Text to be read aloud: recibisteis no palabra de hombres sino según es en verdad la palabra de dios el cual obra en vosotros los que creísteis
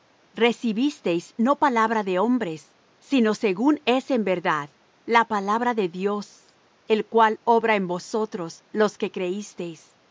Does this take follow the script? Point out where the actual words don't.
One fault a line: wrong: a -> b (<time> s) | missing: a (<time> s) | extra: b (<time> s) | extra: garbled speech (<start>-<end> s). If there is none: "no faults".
no faults